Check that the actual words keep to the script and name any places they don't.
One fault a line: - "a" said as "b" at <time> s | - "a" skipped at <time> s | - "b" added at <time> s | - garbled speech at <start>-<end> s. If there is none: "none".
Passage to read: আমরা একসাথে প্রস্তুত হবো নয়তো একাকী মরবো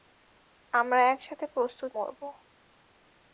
- "হবো নয়তো একাকী" skipped at 1.9 s